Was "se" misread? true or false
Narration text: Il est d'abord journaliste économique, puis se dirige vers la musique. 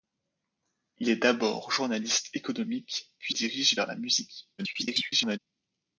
true